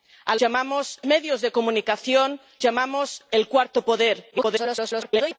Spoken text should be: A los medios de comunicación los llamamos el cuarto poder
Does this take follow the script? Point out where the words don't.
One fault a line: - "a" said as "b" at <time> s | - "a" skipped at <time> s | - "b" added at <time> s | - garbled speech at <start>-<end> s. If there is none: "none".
- "los" said as "llamamos" at 0.4 s
- "los" skipped at 2.4 s
- garbled speech at 4.3-5.4 s